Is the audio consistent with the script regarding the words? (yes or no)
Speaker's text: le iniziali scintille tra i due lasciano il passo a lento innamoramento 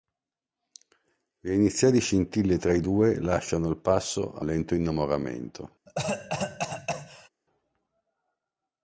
yes